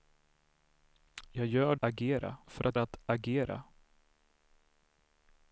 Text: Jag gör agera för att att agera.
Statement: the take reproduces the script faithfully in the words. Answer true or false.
true